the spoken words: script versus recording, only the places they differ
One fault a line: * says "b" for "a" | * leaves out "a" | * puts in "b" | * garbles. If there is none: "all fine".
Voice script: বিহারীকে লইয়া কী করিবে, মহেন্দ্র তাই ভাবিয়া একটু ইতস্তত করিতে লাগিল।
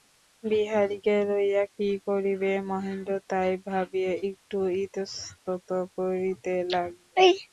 all fine